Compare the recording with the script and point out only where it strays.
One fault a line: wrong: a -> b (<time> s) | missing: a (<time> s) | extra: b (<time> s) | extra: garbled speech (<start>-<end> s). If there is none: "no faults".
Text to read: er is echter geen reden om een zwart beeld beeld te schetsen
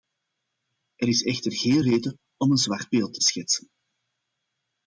missing: beeld (3.1 s)